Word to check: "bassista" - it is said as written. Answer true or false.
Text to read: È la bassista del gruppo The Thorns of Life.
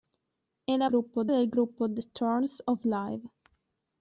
false